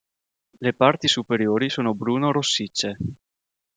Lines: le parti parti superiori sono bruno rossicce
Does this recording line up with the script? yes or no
no